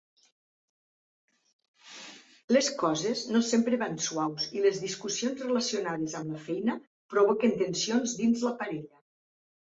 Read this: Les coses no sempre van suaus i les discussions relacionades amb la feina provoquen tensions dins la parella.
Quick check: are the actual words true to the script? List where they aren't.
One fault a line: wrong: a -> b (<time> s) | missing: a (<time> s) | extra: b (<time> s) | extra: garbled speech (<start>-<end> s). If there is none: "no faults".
no faults